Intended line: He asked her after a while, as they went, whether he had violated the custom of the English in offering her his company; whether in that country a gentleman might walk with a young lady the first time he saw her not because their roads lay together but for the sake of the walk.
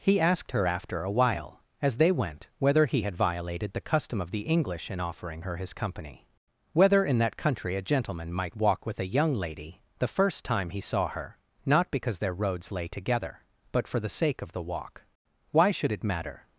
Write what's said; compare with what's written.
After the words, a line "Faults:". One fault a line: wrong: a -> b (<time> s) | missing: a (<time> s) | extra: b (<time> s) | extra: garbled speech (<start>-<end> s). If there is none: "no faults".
He asked her after a while, as they went, whether he had violated the custom of the English in offering her his company; whether in that country a gentleman might walk with a young lady the first time he saw her not because their roads lay together but for the sake of the walk. 'Why should it matter
Faults:
extra: Why should it matter (15.5 s)